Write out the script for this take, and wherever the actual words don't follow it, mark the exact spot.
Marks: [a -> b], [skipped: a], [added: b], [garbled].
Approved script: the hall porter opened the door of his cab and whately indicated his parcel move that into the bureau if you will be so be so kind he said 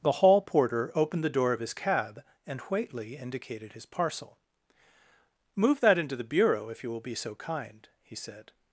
the hall porter opened the door of his cab and whately indicated his parcel move that into the bureau if you will be so [skipped: be so] kind he said